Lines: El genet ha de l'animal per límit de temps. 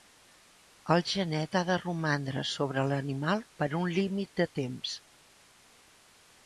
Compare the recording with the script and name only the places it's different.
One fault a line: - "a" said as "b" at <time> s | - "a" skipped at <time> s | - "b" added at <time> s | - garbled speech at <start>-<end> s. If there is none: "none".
- "romandre sobre" added at 1.8 s
- "un" added at 3.8 s